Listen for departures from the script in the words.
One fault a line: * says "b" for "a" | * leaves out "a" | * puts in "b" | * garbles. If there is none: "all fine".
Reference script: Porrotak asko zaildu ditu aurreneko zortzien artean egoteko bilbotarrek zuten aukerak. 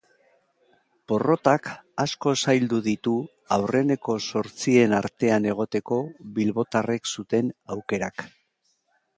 all fine